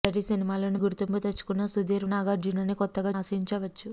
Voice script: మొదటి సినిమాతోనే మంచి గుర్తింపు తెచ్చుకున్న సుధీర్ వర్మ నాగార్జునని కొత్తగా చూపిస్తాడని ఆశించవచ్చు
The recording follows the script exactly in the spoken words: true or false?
false